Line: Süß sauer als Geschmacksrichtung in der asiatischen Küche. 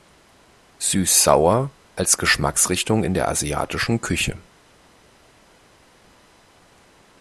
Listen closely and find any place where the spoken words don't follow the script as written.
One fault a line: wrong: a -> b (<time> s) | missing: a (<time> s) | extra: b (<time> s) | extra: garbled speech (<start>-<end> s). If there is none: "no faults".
no faults